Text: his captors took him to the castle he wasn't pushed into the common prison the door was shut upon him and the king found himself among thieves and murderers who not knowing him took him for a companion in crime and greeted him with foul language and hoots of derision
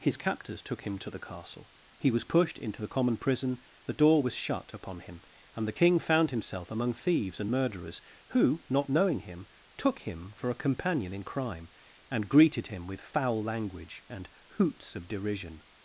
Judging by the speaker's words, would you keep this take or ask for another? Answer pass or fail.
fail